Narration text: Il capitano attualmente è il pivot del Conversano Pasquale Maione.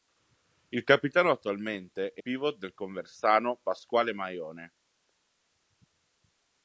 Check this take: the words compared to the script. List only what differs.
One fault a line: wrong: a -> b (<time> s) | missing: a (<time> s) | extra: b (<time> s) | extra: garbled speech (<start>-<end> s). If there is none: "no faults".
missing: il (2.2 s)